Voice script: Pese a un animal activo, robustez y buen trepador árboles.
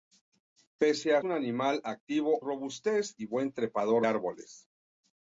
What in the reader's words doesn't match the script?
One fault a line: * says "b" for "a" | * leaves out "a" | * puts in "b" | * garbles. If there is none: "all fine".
all fine